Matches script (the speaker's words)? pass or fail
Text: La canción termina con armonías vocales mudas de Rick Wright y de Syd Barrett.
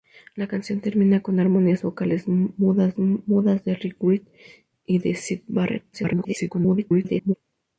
fail